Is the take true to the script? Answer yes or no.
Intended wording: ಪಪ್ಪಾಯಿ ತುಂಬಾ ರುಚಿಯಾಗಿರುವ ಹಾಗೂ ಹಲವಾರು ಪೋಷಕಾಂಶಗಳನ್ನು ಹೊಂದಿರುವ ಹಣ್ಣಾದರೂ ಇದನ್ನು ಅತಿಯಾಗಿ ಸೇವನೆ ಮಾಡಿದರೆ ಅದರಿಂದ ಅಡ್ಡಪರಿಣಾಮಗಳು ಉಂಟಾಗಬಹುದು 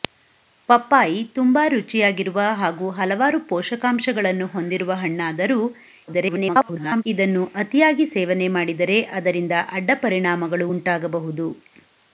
no